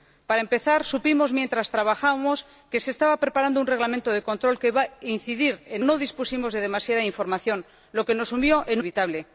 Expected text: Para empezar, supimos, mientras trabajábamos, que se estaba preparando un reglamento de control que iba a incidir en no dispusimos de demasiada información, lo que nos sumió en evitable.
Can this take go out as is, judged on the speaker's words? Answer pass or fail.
pass